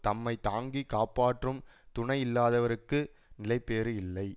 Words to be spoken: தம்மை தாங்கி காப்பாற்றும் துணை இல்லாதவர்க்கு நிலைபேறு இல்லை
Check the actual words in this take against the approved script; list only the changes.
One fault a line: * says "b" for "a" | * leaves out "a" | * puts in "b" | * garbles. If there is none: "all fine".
all fine